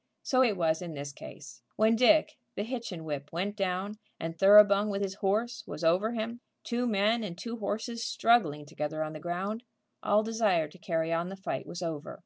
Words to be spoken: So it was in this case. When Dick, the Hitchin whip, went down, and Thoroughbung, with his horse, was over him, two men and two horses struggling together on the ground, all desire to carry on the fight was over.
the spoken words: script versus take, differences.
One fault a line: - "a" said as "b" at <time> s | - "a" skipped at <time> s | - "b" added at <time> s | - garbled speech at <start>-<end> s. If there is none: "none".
none